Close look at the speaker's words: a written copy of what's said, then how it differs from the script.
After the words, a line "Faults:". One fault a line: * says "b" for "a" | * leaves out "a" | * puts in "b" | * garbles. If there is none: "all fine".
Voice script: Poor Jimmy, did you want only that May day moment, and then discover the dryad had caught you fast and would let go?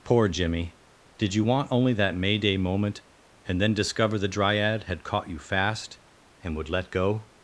Poor Jimmy, did you want only that May day moment, and then discover the dryad had caught you fast and would let go?
Faults:
all fine